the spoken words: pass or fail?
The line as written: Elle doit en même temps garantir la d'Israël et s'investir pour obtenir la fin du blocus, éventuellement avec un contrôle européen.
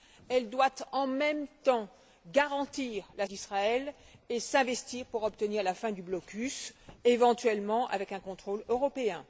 pass